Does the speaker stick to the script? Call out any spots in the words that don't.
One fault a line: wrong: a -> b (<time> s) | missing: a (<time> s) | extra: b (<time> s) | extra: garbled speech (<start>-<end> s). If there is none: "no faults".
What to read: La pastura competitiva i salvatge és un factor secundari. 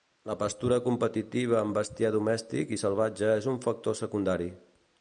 extra: amb bestiar domèstic (1.6 s)